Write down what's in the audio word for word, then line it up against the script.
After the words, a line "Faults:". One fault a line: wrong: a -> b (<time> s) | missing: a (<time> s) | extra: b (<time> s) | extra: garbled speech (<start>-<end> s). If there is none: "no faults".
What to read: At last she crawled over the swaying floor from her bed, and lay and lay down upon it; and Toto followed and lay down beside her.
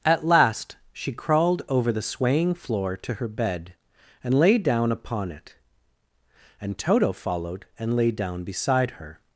At last she crawled over the swaying floor to her bed, and lay down upon it; and Toto followed and lay down beside her.
Faults:
wrong: from -> to (3.0 s)
missing: and lay (4.6 s)